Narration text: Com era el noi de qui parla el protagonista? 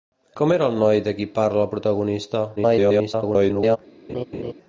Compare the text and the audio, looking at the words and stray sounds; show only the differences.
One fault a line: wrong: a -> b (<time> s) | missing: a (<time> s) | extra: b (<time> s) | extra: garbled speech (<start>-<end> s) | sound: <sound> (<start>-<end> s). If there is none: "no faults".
extra: garbled speech (2.6-3.8 s)
sound: laugh (4.1-4.5 s)